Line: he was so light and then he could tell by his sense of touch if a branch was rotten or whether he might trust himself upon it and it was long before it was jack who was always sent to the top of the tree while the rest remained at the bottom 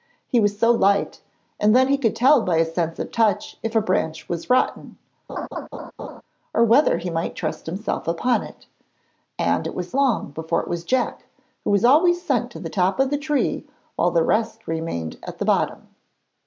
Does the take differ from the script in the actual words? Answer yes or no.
no